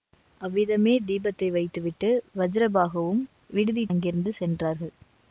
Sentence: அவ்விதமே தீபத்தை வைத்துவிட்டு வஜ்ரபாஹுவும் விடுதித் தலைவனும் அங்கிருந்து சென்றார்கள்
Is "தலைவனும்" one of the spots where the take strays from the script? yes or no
yes